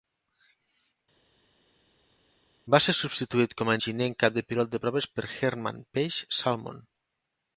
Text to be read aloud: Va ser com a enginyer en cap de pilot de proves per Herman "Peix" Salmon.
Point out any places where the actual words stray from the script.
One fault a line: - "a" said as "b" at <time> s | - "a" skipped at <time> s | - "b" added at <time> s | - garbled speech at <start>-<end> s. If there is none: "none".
- "substituït" added at 3.0 s